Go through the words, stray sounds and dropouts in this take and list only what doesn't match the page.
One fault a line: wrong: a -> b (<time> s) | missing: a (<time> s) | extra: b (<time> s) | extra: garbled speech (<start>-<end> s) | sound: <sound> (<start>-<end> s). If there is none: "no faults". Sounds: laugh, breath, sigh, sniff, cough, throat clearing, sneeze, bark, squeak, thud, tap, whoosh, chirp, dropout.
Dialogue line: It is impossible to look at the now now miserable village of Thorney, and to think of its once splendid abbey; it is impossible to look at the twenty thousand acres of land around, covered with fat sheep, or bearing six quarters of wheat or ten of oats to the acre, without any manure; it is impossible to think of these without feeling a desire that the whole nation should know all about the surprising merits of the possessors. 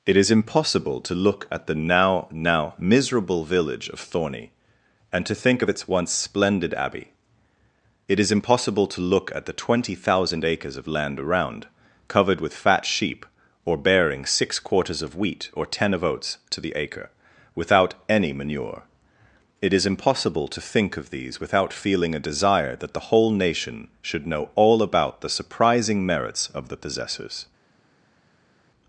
no faults